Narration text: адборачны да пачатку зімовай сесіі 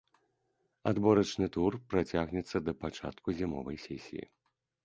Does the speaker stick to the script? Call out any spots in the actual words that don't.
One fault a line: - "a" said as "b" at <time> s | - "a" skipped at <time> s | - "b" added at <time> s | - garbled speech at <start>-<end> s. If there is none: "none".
- "тур працягнецца" added at 1.6 s